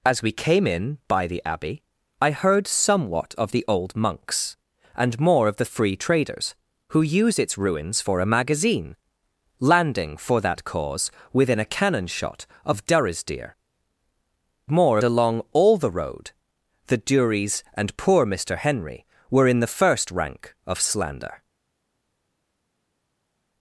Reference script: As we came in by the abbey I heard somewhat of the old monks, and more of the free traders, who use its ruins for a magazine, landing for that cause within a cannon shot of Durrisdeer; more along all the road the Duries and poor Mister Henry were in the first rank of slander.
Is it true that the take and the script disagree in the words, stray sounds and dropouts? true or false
false